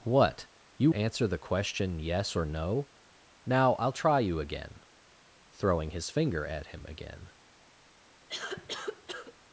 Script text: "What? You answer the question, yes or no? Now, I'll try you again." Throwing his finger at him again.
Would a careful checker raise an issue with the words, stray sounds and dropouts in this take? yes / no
yes